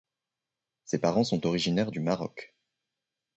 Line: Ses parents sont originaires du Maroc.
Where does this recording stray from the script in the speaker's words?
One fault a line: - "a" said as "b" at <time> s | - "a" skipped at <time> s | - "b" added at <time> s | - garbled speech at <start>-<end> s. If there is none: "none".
none